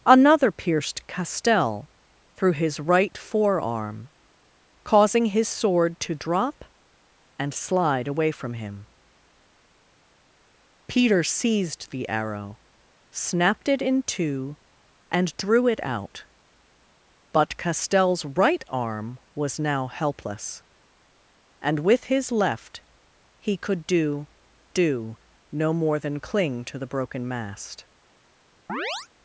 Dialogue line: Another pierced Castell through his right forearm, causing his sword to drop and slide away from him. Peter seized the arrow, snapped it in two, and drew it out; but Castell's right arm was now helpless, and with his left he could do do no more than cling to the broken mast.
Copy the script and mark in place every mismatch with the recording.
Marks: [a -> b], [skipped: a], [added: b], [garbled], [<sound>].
Another pierced Castell through his right forearm, causing his sword to drop and slide away from him. Peter seized the arrow, snapped it in two, and drew it out; but Castell's right arm was now helpless, and with his left he could do do no more than cling to the broken mast. [chirp]